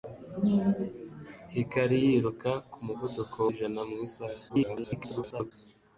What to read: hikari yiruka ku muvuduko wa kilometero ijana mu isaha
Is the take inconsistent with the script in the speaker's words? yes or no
yes